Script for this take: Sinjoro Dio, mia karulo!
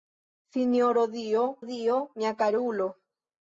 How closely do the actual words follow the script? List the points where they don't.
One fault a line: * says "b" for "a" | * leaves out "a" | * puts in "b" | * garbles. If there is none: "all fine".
* puts in "Dio"